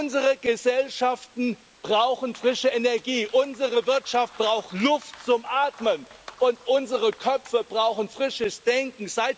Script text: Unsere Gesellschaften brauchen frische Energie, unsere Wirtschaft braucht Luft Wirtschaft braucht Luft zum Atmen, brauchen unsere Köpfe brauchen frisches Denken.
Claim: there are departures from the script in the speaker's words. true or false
true